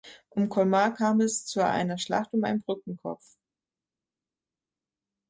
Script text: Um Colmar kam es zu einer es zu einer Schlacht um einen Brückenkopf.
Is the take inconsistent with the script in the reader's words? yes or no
yes